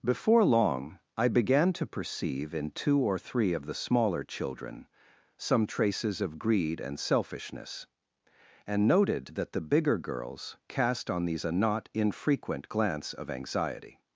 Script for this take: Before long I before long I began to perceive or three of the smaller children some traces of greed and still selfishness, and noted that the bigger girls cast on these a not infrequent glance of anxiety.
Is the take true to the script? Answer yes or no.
no